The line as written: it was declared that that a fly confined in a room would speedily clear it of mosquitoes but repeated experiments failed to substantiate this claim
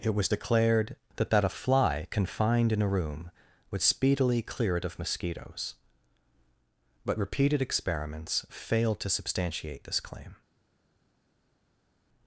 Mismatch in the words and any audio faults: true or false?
false